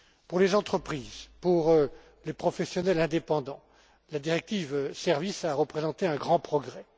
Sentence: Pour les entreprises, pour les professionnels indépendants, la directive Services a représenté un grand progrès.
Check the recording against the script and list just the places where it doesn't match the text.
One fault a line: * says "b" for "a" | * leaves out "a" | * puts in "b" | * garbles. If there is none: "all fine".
all fine